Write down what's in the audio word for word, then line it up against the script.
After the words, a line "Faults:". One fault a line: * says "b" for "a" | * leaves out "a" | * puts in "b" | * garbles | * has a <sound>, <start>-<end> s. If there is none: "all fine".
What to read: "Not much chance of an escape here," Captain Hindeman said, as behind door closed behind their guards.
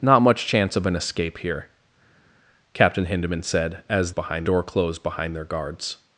"Not much chance of an escape here," Captain Hindeman said, as behind door closed behind their guards.
Faults:
all fine